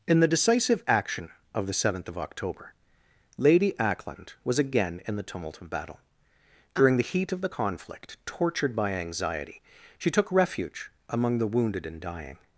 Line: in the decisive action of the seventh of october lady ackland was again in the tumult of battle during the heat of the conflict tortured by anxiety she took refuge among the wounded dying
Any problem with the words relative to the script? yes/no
yes